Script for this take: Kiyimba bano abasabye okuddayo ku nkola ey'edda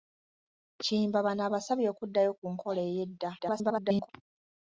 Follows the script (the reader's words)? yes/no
no